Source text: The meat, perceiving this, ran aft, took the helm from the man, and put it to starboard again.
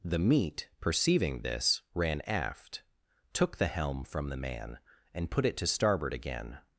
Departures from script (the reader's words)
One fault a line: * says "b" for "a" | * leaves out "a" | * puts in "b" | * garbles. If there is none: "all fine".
all fine